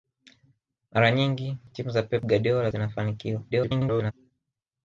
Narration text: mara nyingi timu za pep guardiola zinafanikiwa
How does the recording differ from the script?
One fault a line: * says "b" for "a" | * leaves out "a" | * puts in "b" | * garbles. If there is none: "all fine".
* garbles